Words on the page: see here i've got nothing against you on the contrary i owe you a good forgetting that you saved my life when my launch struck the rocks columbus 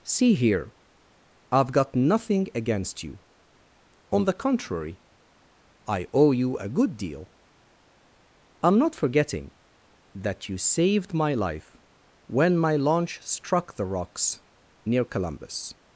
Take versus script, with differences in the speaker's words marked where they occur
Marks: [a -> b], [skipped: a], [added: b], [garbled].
see here i've got nothing against you on the contrary i owe you a good [added: deal i'm not] forgetting that you saved my life when my launch struck the rocks [added: near] columbus